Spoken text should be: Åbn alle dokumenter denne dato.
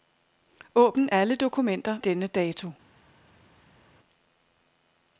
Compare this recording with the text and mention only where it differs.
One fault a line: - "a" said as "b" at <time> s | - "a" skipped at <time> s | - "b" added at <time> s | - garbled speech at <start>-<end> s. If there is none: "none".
none